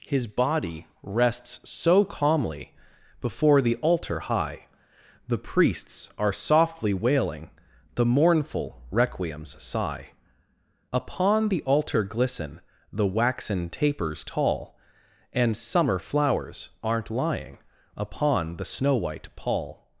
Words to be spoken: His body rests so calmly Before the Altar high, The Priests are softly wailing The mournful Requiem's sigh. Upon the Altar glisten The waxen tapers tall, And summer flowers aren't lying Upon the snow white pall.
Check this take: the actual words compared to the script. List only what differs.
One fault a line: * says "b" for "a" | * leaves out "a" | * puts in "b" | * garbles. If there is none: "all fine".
all fine